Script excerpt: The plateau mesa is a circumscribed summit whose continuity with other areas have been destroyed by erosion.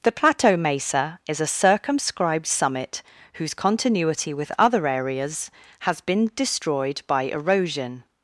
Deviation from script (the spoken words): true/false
true